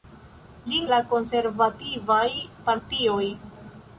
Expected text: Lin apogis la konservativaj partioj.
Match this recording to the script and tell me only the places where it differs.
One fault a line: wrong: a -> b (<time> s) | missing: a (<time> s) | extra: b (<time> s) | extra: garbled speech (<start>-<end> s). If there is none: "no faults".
missing: apogis (0.9 s)